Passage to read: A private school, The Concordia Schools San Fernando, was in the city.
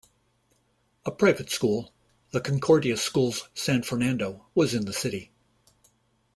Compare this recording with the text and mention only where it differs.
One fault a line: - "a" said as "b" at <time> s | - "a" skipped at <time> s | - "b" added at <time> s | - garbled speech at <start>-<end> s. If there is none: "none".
none